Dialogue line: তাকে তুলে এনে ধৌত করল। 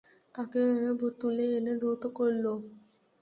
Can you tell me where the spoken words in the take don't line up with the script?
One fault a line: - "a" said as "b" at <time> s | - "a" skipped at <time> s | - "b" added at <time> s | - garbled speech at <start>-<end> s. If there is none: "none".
none